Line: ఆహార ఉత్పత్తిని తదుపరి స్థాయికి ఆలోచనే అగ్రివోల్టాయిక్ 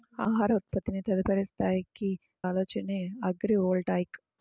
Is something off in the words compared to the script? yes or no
no